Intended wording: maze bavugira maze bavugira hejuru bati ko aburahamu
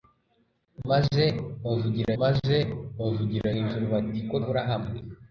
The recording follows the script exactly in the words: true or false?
true